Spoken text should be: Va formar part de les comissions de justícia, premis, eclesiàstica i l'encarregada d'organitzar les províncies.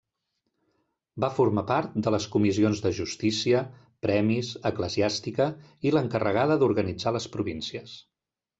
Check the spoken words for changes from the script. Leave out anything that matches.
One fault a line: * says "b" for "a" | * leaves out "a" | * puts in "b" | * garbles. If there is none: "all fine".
all fine